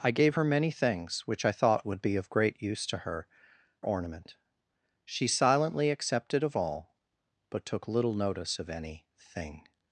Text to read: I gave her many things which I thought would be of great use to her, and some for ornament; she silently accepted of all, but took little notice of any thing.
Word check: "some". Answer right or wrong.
wrong